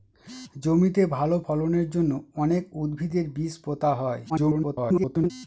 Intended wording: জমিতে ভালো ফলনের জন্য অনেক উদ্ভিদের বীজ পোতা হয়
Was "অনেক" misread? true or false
false